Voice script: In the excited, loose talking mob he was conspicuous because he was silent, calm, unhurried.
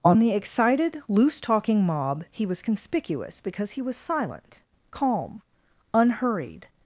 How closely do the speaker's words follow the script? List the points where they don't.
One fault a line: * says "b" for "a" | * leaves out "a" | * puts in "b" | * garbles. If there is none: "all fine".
* says "On" for "In"